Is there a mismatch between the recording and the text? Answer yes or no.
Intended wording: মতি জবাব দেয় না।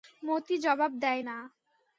no